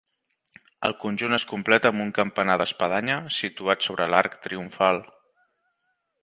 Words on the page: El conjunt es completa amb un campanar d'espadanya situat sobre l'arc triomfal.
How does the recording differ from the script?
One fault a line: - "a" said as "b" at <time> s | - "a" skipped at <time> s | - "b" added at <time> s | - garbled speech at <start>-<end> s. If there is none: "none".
none